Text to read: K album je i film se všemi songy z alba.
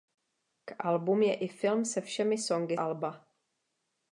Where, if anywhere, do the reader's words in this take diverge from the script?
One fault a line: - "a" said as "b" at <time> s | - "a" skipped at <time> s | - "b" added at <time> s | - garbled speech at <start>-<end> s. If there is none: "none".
- "z" skipped at 2.8 s